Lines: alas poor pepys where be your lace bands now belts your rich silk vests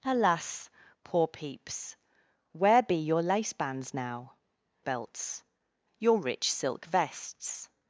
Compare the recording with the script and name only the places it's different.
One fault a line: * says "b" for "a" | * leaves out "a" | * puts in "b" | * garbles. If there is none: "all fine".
all fine